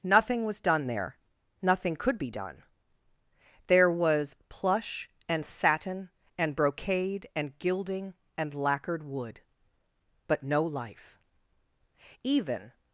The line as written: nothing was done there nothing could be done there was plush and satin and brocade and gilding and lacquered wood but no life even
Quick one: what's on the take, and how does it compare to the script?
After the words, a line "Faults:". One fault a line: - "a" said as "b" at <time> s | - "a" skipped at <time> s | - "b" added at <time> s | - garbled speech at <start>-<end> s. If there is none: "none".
nothing was done there nothing could be done there was plush and satin and brocade and gilding and lacquered wood but no life even
Faults:
none